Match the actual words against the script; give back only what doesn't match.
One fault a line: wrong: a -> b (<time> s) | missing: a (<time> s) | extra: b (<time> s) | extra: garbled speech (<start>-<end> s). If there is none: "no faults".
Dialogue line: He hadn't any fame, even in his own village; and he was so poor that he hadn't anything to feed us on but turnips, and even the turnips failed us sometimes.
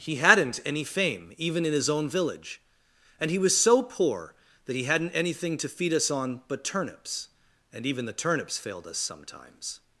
no faults